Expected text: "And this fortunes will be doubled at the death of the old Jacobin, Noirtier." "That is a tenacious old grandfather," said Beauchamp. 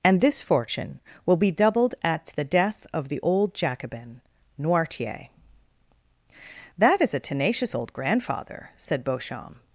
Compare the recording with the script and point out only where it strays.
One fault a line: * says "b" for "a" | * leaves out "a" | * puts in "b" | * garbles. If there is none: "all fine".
* says "fortune" for "fortunes"